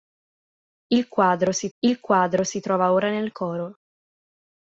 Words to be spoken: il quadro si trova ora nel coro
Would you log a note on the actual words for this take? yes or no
yes